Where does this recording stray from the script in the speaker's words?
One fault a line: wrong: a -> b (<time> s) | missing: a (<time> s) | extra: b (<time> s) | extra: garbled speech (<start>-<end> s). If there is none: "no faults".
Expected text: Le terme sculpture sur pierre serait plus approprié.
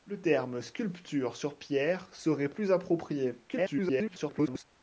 extra: garbled speech (3.5-4.6 s)